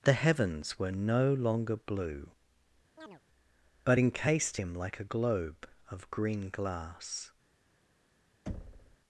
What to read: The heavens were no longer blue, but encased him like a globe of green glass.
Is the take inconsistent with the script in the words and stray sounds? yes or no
yes